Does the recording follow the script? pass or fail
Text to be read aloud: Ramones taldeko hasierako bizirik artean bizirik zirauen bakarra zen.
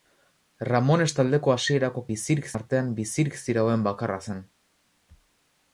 pass